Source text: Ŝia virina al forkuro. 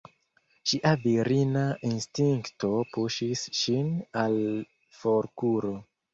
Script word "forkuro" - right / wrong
right